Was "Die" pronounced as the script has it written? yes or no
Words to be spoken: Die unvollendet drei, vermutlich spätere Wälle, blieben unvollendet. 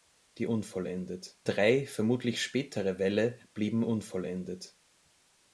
yes